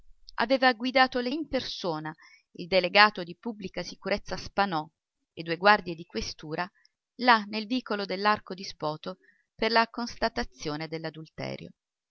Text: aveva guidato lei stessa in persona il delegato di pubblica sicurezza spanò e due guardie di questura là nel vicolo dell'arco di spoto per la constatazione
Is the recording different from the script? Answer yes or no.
yes